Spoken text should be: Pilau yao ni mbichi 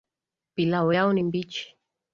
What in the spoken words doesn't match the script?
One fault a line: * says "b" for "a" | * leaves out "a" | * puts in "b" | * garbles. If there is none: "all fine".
all fine